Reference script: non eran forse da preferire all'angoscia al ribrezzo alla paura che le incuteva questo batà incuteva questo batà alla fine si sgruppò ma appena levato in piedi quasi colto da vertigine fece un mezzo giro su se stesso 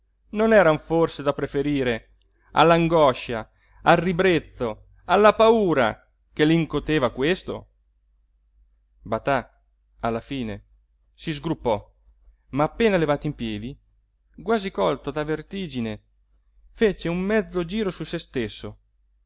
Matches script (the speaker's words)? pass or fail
fail